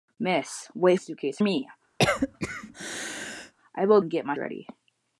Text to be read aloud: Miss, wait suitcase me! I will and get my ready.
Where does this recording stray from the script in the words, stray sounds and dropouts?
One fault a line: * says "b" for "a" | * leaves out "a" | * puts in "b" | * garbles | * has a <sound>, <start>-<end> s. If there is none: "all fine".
* has a cough, 2.0-3.5 s